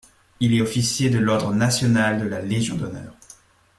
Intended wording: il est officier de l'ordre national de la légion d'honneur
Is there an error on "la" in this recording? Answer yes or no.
no